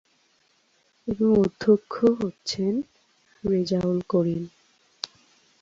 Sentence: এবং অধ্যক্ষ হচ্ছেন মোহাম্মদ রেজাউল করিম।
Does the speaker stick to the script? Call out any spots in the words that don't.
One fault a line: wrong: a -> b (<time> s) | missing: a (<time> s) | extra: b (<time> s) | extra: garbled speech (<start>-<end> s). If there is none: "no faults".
missing: মোহাম্মদ (2.7 s)